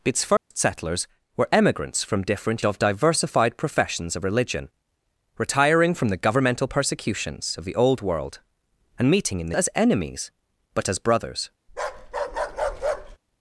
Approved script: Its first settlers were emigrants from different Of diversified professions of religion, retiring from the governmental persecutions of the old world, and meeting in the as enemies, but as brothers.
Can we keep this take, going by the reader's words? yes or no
yes